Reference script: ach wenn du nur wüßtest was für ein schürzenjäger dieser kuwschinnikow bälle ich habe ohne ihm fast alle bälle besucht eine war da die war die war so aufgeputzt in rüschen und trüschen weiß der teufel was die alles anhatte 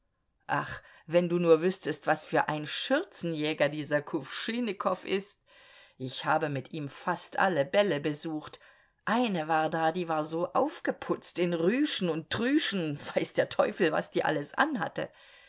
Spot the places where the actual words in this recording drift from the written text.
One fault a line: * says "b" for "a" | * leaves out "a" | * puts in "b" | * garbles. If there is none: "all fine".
* says "ist" for "bälle"
* says "mit" for "ohne"
* leaves out "die war"